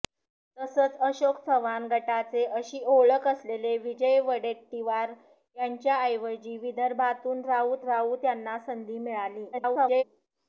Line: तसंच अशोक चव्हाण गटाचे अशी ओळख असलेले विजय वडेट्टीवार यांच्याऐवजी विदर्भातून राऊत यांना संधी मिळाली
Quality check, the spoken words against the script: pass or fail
fail